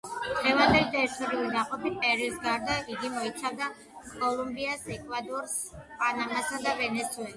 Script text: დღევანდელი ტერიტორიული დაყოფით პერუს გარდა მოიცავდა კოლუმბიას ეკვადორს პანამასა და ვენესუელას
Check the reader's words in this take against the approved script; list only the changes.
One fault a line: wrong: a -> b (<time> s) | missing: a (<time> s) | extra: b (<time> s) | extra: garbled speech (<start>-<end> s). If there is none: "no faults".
extra: იგი (3.0 s)